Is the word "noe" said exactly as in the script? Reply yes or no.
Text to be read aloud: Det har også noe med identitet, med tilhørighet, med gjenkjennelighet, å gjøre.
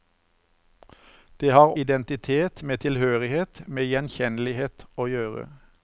no